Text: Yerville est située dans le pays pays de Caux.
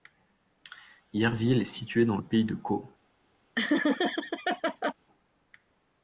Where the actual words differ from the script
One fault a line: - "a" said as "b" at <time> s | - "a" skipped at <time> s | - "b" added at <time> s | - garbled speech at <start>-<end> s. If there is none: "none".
- "pays" skipped at 2.4 s